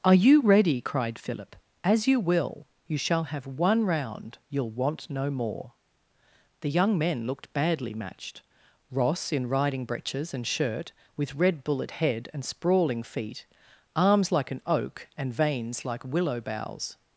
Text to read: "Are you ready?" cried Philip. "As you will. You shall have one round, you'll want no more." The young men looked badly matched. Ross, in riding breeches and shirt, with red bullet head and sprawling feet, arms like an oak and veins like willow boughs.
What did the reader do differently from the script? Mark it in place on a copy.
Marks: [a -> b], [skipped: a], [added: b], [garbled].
"Are you ready?" cried Philip. "As you will. You shall have one round, you'll want no more." The young men looked badly matched. Ross, in riding breeches and shirt, with red bullet head and sprawling feet, arms like an oak and veins like willow boughs.